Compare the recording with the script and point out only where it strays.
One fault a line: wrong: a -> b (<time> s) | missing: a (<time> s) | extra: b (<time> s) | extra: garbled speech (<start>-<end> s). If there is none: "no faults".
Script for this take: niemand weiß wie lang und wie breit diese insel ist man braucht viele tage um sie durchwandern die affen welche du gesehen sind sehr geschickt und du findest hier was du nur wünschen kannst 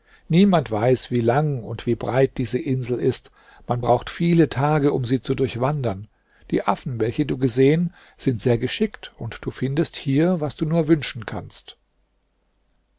extra: zu (5.2 s)